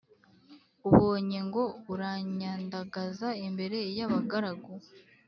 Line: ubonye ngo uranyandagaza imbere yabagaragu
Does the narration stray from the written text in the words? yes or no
no